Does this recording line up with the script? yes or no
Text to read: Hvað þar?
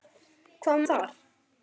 yes